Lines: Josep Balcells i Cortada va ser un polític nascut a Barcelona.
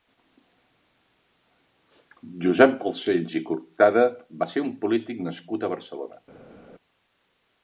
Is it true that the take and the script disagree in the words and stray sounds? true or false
false